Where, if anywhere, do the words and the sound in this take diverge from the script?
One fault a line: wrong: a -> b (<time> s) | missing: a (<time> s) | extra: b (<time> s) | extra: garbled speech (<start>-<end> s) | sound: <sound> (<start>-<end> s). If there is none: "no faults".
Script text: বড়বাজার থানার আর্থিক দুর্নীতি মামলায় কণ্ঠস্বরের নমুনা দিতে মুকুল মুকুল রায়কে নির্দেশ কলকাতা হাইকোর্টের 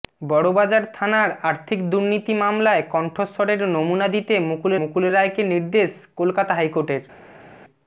no faults